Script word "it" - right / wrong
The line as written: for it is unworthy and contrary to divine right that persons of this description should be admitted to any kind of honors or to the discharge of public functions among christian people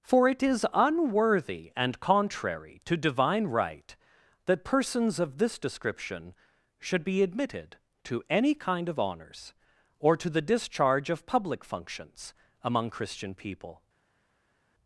right